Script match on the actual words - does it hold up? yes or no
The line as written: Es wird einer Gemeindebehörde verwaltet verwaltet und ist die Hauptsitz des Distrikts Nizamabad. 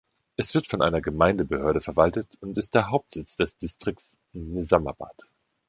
no